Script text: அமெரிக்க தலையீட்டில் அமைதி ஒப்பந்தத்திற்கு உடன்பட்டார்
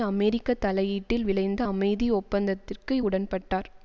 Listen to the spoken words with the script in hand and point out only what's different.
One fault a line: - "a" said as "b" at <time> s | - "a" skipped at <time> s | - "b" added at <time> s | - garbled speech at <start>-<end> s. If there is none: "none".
- "விளைந்த" added at 1.2 s